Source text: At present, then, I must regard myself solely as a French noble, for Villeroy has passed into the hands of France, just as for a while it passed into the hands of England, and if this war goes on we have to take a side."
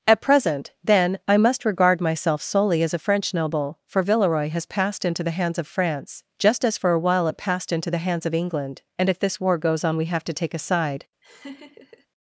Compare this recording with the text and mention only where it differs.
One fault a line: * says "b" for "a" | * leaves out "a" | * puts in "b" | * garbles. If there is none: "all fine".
all fine